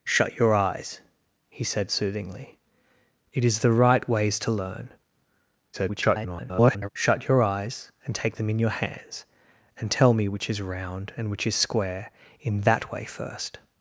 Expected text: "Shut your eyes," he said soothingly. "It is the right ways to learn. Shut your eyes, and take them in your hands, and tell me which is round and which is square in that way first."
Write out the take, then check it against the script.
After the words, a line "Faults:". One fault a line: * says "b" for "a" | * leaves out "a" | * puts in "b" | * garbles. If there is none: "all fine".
"Shut your eyes," he said soothingly. "It is the right ways to learn. [garbled] Shut your eyes, and take them in your hands, and tell me which is round and which is square in that way first."
Faults:
* garbles